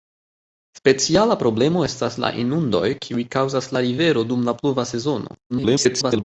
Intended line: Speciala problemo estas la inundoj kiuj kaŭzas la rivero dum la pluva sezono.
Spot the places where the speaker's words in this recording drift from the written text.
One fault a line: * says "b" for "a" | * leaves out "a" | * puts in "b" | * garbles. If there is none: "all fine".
* garbles